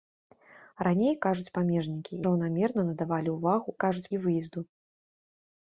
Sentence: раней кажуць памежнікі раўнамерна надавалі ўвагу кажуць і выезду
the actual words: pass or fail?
pass